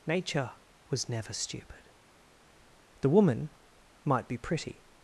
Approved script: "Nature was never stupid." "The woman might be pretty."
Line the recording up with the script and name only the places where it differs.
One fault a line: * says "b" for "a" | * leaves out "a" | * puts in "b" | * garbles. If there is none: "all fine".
all fine